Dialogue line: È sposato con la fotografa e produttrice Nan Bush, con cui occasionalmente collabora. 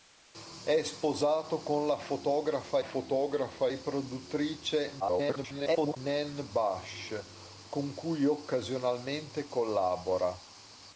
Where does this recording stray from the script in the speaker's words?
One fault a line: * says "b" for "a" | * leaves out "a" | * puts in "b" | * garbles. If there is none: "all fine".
* puts in "fotografa"
* garbles